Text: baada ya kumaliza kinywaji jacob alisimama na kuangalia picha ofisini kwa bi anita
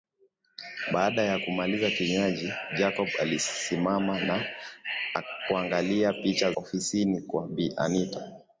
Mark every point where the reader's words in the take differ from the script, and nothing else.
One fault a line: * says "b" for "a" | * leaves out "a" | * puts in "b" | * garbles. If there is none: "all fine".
all fine